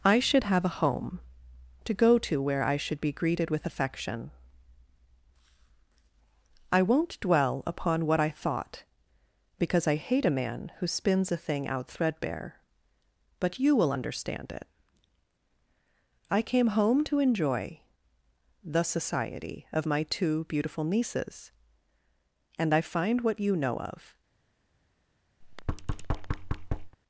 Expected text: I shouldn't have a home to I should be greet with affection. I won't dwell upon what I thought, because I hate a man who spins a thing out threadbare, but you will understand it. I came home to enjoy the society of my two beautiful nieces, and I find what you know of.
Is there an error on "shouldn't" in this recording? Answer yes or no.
yes